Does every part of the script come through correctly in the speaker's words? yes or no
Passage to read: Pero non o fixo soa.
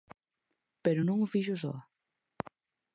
yes